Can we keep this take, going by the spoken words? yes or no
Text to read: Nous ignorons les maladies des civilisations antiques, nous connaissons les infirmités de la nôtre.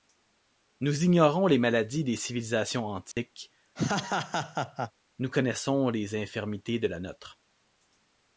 yes